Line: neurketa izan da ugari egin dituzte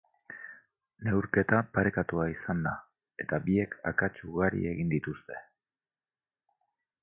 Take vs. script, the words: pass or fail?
fail